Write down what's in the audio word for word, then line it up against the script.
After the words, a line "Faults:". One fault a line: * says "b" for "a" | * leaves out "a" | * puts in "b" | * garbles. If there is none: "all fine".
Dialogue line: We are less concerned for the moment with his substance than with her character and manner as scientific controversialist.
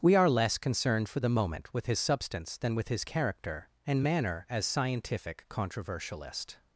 We are less concerned for the moment with his substance than with his character and manner as scientific controversialist.
Faults:
* says "his" for "her"